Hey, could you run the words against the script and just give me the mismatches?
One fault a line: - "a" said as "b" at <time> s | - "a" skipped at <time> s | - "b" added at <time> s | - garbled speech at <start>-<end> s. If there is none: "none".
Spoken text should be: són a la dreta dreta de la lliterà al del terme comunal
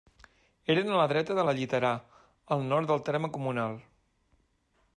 - "són" said as "eren" at 0.8 s
- "dreta" skipped at 1.4 s
- "nord" added at 2.7 s